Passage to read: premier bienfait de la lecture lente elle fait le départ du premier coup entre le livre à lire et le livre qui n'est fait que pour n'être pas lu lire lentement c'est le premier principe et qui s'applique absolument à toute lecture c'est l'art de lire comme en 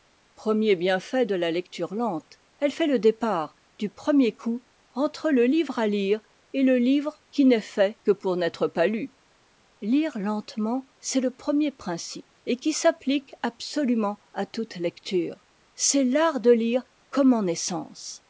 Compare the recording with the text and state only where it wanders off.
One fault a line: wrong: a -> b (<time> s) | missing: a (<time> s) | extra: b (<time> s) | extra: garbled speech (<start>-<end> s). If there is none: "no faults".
no faults